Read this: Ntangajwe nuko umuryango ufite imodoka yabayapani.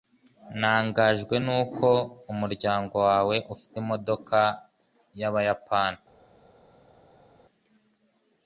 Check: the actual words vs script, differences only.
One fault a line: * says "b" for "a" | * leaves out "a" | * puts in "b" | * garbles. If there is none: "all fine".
* puts in "wawe"